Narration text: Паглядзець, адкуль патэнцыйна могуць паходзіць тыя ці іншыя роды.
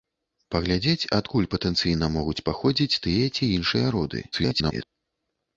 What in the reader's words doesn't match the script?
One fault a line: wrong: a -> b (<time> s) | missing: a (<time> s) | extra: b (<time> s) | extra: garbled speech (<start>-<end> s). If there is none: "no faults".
extra: garbled speech (4.3-4.9 s)